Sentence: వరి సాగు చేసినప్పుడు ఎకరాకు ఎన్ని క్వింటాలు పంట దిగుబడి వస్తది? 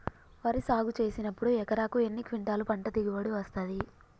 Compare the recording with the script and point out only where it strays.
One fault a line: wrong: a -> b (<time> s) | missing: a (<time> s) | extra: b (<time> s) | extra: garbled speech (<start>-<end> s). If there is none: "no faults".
no faults